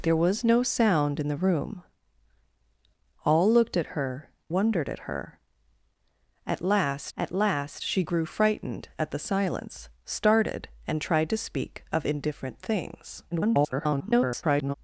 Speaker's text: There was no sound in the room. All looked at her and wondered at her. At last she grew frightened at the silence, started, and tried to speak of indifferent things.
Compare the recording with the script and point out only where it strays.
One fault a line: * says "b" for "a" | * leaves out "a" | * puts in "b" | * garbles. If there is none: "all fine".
* leaves out "and"
* puts in "at last"
* garbles